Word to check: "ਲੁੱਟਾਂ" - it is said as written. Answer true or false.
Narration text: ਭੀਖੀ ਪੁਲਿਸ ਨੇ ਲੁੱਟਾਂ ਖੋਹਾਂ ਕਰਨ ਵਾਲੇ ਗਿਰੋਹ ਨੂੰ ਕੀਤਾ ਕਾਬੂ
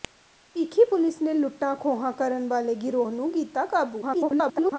true